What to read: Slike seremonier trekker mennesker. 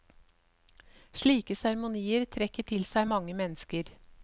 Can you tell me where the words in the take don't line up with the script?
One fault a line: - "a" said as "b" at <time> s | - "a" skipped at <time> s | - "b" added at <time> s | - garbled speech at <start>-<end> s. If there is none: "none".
- "til seg mange" added at 2.7 s